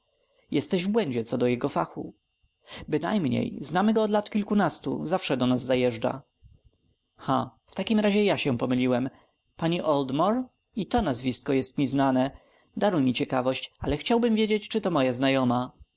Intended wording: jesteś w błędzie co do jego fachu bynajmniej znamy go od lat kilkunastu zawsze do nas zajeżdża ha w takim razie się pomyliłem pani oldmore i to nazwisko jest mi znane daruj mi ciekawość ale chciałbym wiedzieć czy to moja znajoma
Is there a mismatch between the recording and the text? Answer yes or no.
yes